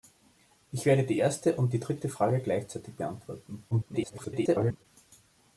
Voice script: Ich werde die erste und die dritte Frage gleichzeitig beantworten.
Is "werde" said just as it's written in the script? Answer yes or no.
yes